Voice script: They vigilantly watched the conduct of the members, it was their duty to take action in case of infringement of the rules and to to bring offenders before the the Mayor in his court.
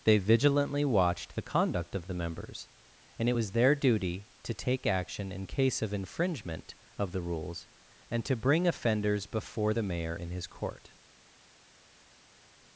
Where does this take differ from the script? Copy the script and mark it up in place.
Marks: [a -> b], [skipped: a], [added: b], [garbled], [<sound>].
They vigilantly watched the conduct of the members, [added: and] it was their duty to take action in case of infringement of the rules and to [skipped: to] bring offenders before the [skipped: the] Mayor in his court.